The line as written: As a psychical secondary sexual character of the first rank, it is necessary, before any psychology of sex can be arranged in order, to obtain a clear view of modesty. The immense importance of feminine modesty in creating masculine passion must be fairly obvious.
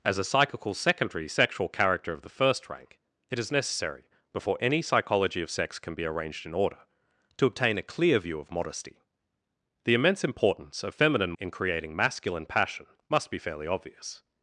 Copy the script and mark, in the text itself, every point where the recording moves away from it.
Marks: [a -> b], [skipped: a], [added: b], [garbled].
As a psychical secondary sexual character of the first rank, it is necessary, before any psychology of sex can be arranged in order, to obtain a clear view of modesty. The immense importance of feminine [skipped: modesty] in creating masculine passion must be fairly obvious.